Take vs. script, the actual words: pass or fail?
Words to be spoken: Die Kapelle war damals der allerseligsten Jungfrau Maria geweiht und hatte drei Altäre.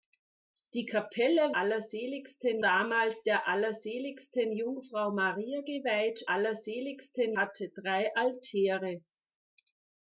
fail